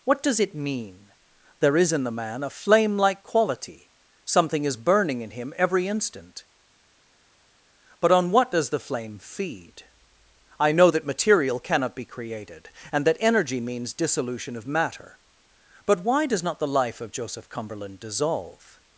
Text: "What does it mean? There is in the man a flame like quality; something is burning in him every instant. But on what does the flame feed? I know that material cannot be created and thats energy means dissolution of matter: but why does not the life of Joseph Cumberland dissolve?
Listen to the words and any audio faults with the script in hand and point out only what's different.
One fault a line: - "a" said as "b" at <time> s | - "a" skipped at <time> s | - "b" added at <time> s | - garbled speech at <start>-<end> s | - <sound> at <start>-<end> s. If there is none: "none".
- "thats" said as "that" at 13.1 s